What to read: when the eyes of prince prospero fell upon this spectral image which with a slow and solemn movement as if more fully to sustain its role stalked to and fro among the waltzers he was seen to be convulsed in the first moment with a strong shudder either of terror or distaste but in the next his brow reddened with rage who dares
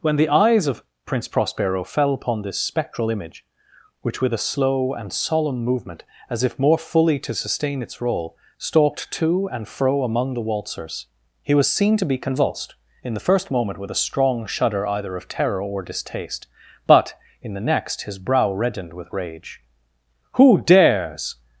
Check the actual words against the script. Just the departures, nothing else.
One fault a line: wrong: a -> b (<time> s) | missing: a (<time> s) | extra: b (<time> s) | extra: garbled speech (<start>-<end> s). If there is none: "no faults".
no faults